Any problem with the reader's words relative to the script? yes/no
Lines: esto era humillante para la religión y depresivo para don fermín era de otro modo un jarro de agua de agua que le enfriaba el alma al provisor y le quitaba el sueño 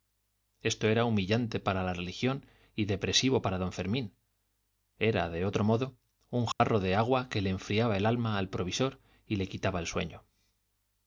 yes